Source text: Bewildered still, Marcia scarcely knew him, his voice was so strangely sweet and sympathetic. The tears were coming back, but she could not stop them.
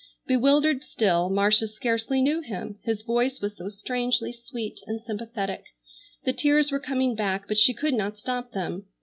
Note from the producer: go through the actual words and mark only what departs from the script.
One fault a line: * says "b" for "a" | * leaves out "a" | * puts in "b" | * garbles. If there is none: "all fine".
all fine